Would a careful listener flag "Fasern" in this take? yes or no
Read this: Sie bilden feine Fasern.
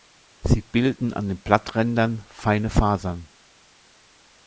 no